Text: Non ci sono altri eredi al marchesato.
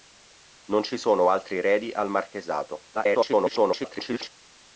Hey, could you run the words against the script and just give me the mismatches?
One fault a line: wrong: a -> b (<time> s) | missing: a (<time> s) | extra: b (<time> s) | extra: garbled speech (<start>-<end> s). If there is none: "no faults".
extra: garbled speech (2.9-4.3 s)